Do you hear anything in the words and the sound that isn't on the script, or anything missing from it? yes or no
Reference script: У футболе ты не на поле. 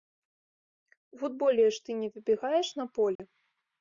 yes